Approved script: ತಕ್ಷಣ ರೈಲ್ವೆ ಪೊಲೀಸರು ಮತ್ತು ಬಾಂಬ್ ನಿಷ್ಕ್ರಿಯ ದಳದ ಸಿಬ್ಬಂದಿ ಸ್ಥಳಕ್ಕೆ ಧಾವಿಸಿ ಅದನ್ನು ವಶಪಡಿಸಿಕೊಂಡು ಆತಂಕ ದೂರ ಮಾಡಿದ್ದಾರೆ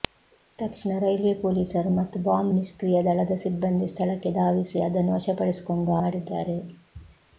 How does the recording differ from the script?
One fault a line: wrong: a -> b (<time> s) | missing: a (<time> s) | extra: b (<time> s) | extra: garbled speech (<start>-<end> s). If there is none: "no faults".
missing: ಆತಂಕ ದೂರ (5.9 s)